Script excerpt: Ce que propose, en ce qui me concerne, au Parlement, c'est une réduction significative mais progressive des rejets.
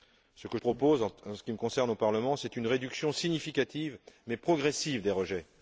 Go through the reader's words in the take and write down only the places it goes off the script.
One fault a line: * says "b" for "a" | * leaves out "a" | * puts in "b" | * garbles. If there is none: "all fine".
all fine